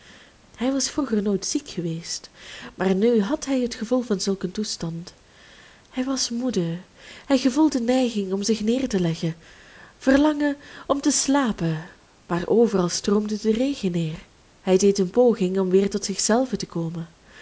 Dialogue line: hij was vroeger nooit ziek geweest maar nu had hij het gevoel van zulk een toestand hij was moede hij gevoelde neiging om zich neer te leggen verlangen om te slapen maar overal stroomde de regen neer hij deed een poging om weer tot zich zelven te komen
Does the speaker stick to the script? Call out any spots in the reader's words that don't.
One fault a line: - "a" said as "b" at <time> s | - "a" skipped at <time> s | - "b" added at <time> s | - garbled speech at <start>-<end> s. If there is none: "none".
none